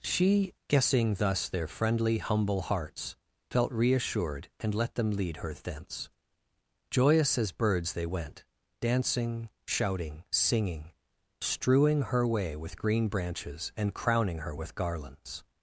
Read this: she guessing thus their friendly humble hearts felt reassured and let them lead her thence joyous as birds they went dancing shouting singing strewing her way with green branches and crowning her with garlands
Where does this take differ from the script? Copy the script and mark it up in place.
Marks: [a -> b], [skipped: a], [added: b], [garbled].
she guessing thus their friendly humble hearts felt reassured and let them lead her thence joyous as birds they went dancing shouting singing strewing her way with green branches and crowning her with garlands